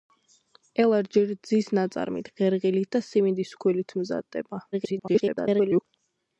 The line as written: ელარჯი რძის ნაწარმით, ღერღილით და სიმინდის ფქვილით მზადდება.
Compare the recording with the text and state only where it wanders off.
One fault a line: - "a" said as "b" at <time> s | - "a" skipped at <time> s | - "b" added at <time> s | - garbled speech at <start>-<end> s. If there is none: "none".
- garbled speech at 4.7-5.8 s